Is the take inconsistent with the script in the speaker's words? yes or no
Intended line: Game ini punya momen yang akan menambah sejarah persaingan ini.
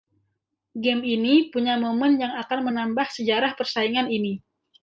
no